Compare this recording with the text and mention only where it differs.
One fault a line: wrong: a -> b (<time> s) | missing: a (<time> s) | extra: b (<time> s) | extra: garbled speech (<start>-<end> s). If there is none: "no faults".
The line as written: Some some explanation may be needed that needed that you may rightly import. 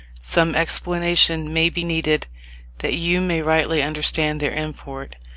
missing: some (0.6 s)
missing: needed that (2.9 s)
extra: understand their (3.8 s)